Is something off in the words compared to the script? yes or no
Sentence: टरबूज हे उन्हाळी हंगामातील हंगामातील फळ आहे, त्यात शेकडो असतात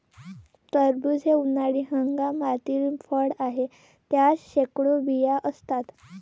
yes